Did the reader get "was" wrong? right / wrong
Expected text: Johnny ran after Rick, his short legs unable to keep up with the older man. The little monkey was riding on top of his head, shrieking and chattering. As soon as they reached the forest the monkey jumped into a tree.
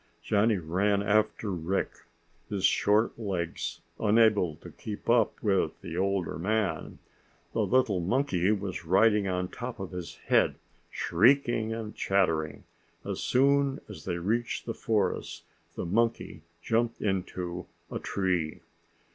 right